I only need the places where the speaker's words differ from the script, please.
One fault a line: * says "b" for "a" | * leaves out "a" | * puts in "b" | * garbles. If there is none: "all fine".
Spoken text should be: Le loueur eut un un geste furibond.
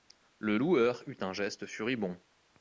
* leaves out "un"